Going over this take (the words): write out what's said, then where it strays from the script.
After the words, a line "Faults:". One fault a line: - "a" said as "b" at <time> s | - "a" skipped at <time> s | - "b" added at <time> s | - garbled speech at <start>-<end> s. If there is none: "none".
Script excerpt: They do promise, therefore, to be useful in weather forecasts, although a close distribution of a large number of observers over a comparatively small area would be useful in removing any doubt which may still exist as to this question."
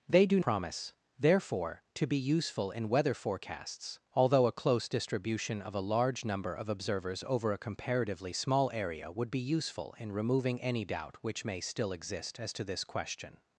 They do promise, therefore, to be useful in weather forecasts, although a close distribution of a large number of observers over a comparatively small area would be useful in removing any doubt which may still exist as to this question."
Faults:
none